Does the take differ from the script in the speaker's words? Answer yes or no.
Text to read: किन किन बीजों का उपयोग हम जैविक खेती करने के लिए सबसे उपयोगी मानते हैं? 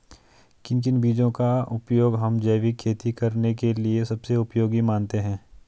no